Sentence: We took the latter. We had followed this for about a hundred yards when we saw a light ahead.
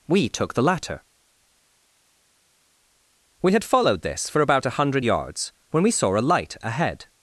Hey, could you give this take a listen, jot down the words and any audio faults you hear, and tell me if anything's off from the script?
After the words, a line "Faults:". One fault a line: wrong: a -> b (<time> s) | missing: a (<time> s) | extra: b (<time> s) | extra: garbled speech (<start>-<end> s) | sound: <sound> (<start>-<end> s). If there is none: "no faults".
We took the latter. We had followed this for about a hundred yards when we saw a light ahead.
Faults:
no faults